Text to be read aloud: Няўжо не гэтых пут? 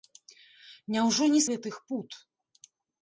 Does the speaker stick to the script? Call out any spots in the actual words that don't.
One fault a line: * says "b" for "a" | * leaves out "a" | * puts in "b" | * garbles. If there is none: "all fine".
all fine